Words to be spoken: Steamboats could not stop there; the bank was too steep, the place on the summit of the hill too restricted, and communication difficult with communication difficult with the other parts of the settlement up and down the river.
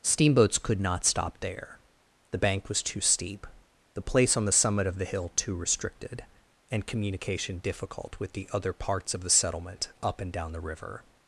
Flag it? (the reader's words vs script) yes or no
yes